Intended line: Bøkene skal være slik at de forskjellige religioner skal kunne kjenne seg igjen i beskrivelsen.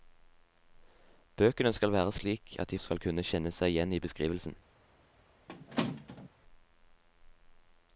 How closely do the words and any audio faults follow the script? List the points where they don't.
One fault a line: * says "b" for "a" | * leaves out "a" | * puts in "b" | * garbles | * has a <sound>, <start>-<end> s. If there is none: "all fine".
* leaves out "forskjellige religioner"
* has a squeak, 5.5-6.3 s